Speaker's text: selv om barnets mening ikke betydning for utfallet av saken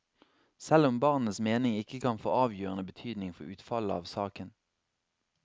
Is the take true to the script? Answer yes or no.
no